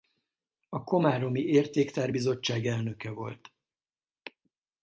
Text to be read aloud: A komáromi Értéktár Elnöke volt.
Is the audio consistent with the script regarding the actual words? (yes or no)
no